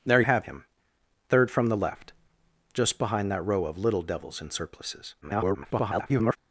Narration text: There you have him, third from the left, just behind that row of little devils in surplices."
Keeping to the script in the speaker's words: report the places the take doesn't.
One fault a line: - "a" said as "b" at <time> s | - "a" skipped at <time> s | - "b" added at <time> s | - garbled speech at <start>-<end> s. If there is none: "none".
- "you" skipped at 0.2 s
- garbled speech at 5.2-6.4 s